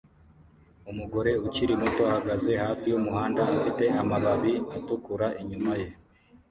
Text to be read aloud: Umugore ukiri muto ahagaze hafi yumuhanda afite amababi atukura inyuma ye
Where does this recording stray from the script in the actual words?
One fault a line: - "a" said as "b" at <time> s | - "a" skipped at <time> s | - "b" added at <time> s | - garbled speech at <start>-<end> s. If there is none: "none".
none